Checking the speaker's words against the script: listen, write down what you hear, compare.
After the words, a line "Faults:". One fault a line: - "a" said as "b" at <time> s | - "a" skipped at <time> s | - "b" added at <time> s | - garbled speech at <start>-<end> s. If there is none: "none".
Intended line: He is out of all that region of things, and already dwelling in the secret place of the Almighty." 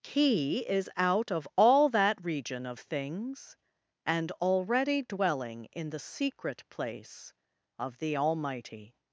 He is out of all that region of things, and already dwelling in the secret place of the Almighty."
Faults:
none